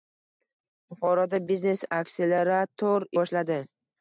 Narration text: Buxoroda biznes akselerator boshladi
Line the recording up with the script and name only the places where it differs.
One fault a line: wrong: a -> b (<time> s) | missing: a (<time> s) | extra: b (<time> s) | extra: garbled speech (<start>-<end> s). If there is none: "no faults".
no faults